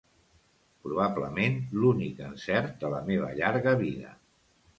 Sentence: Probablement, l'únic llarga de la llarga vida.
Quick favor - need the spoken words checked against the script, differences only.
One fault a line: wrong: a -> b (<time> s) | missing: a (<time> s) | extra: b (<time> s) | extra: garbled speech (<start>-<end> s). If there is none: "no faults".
wrong: llarga -> encert (2.3 s)
extra: meva (3.1 s)